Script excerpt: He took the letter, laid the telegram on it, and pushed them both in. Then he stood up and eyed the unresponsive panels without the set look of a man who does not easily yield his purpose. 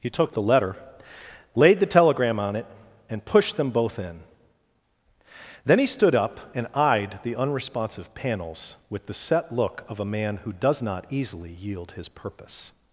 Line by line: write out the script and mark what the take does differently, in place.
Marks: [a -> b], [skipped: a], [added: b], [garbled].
He took the letter, laid the telegram on it, and pushed them both in. Then he stood up and eyed the unresponsive panels [without -> with] the set look of a man who does not easily yield his purpose.